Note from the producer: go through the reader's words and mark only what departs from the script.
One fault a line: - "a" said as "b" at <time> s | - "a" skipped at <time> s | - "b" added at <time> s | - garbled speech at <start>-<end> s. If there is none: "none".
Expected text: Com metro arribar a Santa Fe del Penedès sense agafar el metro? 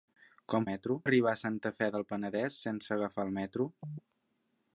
none